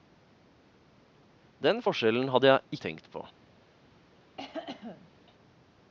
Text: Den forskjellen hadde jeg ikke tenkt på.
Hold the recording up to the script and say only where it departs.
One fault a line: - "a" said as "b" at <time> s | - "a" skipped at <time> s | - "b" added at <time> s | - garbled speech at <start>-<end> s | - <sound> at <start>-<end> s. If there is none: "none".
- "ikke" skipped at 2.8 s
- cough at 4.4-5.1 s